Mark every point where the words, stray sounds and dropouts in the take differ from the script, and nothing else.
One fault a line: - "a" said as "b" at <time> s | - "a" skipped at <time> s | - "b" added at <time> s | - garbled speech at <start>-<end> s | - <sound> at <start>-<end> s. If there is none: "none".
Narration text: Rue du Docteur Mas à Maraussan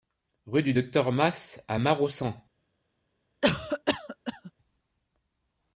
- cough at 3.4-4.5 s